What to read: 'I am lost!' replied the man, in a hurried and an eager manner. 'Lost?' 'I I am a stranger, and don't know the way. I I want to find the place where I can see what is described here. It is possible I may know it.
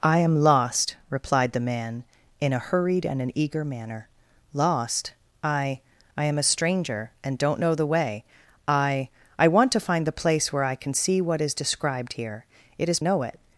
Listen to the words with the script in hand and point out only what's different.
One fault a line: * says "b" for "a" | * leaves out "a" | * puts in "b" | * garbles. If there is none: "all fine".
* leaves out "possible I may"